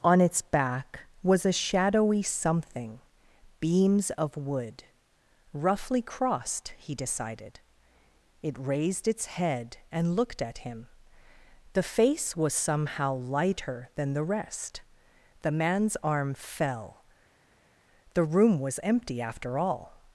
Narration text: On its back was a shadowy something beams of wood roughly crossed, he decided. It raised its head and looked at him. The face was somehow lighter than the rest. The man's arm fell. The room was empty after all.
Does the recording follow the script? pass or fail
pass